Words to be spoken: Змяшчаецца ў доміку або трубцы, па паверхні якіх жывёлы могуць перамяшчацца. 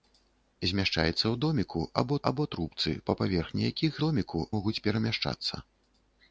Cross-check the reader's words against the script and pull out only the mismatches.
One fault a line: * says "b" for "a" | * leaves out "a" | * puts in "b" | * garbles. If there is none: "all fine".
* puts in "або"
* says "доміку" for "жывёлы"